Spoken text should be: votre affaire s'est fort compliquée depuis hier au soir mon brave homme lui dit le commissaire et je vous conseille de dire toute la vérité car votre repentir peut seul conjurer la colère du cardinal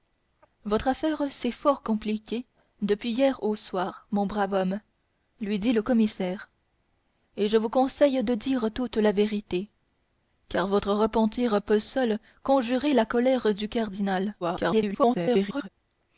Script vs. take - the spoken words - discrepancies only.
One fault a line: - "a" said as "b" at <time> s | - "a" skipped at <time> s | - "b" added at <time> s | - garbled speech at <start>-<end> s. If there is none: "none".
- garbled speech at 14.4-15.7 s